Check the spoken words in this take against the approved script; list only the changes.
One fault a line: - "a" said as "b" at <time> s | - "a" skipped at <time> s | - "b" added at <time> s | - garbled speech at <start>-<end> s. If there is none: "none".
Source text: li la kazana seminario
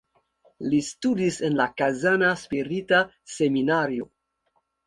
- "studis en" added at 0.9 s
- "spirita" added at 2.5 s